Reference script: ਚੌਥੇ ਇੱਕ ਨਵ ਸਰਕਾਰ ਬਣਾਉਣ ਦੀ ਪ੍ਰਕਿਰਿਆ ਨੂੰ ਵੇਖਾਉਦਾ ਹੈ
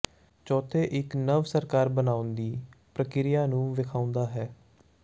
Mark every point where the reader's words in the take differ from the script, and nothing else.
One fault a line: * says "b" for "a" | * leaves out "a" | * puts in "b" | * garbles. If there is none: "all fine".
all fine